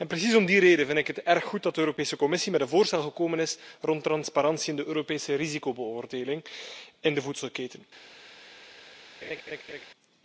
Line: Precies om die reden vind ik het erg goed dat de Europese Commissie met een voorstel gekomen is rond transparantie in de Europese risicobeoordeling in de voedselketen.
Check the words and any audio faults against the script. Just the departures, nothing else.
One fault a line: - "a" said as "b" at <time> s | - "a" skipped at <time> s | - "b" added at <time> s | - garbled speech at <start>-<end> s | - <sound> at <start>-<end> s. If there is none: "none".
- laugh at 9.2-9.8 s